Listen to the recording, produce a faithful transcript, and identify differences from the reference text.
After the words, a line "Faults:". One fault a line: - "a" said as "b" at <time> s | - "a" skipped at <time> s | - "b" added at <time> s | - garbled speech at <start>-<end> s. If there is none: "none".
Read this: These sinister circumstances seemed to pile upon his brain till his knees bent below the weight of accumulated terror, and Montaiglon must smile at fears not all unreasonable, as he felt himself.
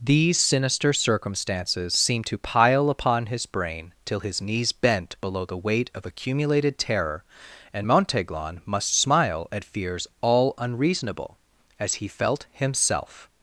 These sinister circumstances seemed to pile upon his brain till his knees bent below the weight of accumulated terror, and Montaiglon must smile at fears all unreasonable, as he felt himself.
Faults:
- "not" skipped at 10.1 s